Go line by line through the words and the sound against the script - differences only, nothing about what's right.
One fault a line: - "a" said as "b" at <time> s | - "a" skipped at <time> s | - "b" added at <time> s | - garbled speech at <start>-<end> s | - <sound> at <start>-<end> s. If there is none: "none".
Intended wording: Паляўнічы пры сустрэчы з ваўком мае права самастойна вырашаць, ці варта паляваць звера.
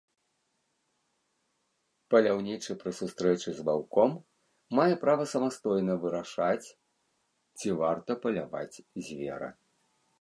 none